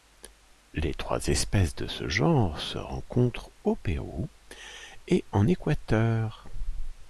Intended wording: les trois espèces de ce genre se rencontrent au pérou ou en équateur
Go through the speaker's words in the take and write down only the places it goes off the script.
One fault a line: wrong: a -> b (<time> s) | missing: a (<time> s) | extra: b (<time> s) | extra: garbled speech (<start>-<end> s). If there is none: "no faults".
wrong: ou -> et (5.1 s)